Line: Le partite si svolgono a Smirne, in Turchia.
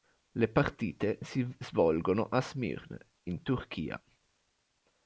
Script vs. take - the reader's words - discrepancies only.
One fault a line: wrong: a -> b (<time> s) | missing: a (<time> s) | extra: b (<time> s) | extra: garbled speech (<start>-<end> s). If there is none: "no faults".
no faults